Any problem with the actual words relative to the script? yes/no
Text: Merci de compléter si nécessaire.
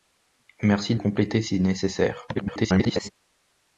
yes